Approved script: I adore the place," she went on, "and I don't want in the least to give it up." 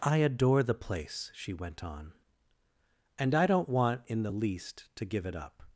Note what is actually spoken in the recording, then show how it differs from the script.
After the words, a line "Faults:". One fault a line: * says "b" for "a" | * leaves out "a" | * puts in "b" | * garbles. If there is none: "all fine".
I adore the place," she went on, "and I don't want in the least to give it up."
Faults:
all fine